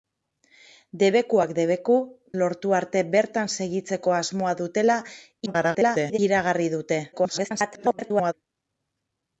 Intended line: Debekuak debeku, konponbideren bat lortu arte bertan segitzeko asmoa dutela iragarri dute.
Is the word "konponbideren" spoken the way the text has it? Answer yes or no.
no